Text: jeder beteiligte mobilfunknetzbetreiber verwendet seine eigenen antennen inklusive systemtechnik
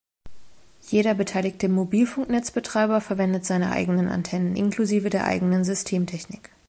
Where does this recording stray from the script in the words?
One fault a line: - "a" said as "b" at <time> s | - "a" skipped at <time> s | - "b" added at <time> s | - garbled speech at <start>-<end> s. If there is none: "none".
- "der eigenen" added at 5.1 s